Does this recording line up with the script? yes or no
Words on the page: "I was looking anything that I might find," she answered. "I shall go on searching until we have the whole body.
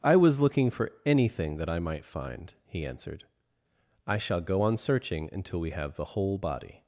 no